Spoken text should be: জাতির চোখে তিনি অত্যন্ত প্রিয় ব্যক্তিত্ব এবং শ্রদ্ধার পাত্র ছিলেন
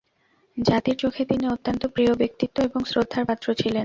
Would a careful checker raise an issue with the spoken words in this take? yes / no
no